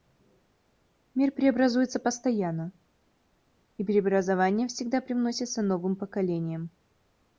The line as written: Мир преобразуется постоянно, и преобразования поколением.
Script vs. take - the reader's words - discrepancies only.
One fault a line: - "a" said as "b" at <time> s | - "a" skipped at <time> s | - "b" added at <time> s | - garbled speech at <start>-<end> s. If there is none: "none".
- "всегда привносятся новым" added at 4.7 s